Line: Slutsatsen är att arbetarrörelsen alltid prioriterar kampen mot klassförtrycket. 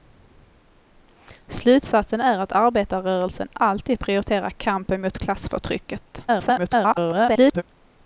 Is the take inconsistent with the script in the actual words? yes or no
yes